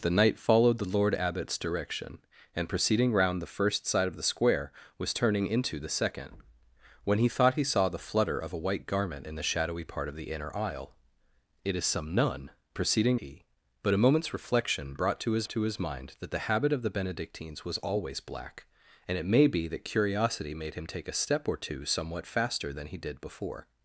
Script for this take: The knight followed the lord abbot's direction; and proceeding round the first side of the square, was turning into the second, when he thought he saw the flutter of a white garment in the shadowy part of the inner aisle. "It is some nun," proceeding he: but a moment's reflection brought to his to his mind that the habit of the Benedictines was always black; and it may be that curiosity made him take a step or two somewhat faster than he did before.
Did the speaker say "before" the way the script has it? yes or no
yes